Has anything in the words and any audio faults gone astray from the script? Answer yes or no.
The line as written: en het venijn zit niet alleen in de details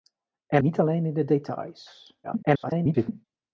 yes